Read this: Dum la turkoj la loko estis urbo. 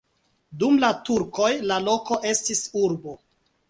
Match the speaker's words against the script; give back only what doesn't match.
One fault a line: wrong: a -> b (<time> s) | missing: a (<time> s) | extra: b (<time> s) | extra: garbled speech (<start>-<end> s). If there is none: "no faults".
no faults